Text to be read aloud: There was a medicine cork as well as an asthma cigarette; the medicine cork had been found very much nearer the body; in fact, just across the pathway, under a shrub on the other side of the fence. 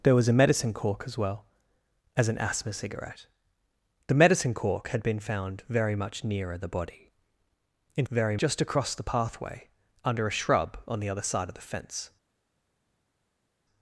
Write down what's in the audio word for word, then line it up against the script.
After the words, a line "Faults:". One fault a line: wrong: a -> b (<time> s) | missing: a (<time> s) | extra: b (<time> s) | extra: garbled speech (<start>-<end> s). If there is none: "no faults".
There was a medicine cork as well as an asthma cigarette; the medicine cork had been found very much nearer the body; in very, just across the pathway, under a shrub on the other side of the fence.
Faults:
wrong: fact -> very (8.1 s)